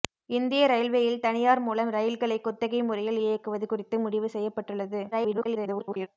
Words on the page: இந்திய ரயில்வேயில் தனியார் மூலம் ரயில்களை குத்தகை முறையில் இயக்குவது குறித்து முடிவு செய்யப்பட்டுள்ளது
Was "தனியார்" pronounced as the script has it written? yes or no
yes